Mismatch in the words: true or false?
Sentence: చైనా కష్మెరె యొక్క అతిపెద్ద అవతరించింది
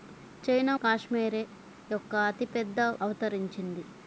false